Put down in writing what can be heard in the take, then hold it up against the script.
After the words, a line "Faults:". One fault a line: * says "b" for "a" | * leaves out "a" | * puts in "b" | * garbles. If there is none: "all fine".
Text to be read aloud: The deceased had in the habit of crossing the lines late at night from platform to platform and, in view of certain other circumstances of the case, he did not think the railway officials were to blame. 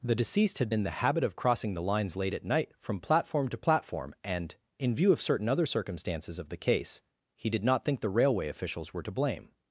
The deceased had in the habit of crossing the lines late at night from platform to platform and, in view of certain other circumstances of the case, he did not think the railway officials were to blame.
Faults:
all fine